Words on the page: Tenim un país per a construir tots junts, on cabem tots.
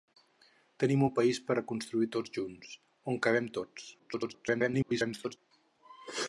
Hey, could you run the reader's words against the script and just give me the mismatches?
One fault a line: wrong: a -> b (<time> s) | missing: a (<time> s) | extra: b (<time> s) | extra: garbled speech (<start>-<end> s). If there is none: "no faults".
extra: garbled speech (4.0-5.4 s)